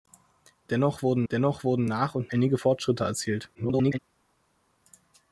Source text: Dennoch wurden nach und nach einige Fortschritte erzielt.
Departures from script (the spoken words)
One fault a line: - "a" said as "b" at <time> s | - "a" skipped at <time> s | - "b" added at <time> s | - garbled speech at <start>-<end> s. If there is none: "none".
- "dennoch wurden" added at 1.3 s
- "nach" skipped at 2.3 s
- garbled speech at 3.5-4.0 s